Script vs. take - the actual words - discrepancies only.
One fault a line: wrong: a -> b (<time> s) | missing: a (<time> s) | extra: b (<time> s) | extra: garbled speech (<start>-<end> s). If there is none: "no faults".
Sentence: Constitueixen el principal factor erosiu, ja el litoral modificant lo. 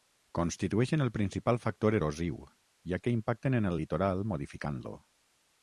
extra: que impacten en (3.0 s)